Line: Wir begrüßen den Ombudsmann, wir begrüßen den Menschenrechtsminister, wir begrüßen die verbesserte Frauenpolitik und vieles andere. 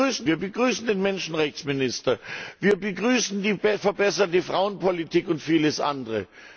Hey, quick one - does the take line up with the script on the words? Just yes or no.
no